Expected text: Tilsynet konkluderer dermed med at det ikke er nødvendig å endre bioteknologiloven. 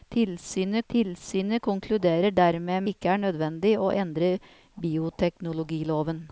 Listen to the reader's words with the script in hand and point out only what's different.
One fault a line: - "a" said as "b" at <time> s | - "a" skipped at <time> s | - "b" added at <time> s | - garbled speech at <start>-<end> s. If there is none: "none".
- "tilsynet" added at 0.9 s
- "med at det" skipped at 2.8 s